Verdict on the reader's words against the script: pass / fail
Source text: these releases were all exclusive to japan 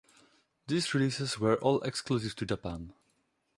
pass